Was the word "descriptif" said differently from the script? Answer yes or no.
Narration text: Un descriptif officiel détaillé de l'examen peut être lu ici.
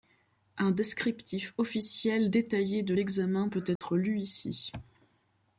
no